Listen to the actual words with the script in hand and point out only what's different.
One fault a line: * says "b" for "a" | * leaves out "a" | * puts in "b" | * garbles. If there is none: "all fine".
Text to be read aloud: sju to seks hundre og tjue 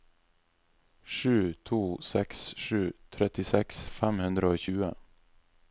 * puts in "sju trettiseks fem"